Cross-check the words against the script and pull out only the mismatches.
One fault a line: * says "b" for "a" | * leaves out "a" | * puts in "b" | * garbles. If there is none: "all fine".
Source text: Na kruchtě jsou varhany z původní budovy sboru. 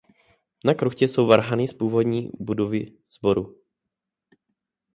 all fine